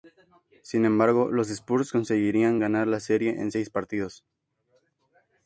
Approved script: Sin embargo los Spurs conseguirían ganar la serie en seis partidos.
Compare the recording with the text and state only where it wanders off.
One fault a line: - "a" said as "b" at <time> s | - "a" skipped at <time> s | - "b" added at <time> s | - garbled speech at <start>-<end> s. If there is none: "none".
none